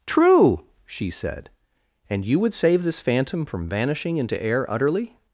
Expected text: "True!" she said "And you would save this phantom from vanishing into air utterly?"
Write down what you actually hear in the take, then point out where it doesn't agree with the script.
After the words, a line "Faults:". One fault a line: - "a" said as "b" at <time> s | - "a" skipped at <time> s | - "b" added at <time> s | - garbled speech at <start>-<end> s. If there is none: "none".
"True!" she said "And you would save this phantom from vanishing into air utterly?"
Faults:
none